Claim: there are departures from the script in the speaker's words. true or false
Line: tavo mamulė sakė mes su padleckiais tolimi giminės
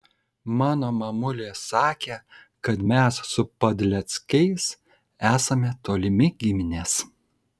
true